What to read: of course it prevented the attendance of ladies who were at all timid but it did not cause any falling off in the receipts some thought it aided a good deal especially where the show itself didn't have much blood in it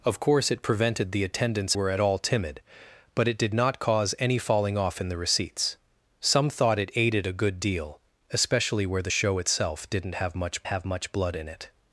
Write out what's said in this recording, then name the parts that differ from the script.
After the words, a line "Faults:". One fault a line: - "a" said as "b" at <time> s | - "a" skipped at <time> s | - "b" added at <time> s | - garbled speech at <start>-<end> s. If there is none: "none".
of course it prevented the attendance were at all timid but it did not cause any falling off in the receipts some thought it aided a good deal especially where the show itself didn't have much have much blood in it
Faults:
- "of ladies who" skipped at 1.8 s
- "have much" added at 10.7 s